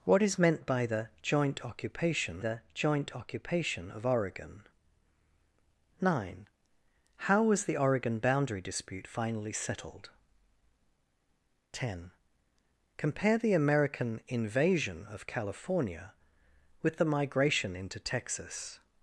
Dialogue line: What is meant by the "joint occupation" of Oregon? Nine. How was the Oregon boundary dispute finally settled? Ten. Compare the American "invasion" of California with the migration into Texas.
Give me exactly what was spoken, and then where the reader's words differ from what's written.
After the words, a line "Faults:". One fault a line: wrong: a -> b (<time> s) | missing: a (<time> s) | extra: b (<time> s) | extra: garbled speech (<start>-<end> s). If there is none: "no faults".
What is meant by the "joint occupation the joint occupation" of Oregon? Nine. How was the Oregon boundary dispute finally settled? Ten. Compare the American "invasion" of California with the migration into Texas.
Faults:
extra: the joint occupation (2.4 s)